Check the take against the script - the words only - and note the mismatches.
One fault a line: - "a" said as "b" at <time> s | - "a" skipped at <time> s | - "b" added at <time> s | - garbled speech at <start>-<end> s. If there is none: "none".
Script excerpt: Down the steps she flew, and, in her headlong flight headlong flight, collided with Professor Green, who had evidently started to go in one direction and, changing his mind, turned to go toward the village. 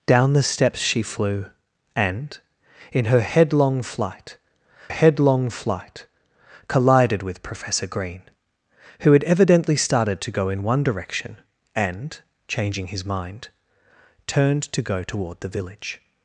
none